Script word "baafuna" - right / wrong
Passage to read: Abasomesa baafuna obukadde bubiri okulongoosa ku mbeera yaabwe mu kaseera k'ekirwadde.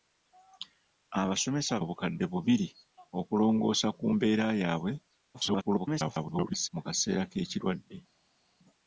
wrong